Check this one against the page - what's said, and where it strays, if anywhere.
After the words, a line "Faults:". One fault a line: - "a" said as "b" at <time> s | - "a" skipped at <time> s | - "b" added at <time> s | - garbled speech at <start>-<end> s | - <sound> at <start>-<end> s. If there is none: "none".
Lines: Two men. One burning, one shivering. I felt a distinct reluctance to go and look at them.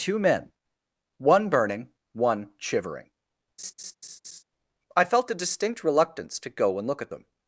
Two men. One burning, one shivering. I felt a distinct reluctance to go and look at them.
Faults:
- laugh at 3.6-4.4 s